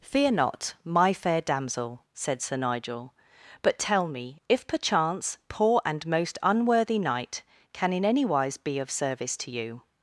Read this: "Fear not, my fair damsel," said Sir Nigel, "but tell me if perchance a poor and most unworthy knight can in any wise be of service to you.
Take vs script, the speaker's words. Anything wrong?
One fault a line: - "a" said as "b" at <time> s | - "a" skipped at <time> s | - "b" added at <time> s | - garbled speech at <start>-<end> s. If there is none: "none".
- "a" skipped at 5.4 s